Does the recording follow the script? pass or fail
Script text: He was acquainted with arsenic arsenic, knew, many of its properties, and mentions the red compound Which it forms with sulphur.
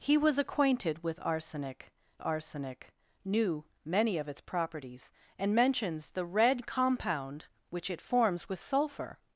pass